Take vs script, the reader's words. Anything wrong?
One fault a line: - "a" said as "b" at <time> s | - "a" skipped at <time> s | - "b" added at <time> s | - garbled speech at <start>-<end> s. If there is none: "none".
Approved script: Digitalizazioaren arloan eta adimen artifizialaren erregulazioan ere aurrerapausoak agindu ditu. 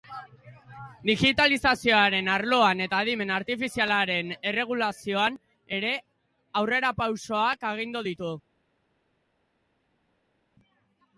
none